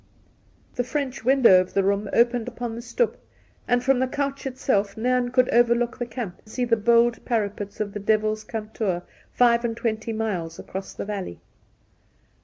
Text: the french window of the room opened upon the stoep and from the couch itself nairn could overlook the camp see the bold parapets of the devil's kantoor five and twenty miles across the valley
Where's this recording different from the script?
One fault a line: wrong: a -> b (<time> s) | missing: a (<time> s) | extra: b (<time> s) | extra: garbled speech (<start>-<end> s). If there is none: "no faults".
no faults